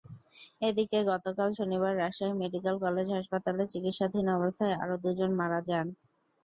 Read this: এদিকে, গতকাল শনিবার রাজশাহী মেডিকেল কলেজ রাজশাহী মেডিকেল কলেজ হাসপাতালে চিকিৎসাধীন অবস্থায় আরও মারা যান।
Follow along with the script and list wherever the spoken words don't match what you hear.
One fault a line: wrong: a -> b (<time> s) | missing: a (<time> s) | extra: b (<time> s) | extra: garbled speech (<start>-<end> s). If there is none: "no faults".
missing: রাজশাহী মেডিকেল কলেজ (3.1 s)
extra: দুজন (5.0 s)